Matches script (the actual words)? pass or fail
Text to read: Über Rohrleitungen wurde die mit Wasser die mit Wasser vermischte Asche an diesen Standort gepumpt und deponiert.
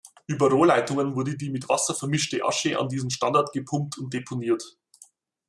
fail